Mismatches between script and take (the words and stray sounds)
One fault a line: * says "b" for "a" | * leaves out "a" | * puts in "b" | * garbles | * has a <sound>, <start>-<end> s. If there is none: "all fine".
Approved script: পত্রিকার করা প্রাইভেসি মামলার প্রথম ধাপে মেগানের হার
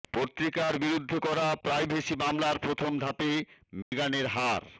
* puts in "বিরুদ্ধে"
* has a dropout, 3.8-3.9 s